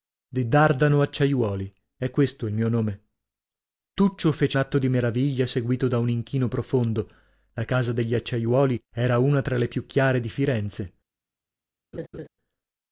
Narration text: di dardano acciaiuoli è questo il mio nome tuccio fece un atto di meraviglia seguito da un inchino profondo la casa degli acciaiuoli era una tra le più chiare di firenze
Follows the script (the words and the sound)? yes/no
no